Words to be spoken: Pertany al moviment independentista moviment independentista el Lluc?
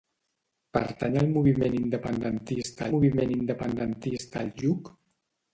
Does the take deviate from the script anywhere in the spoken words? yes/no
no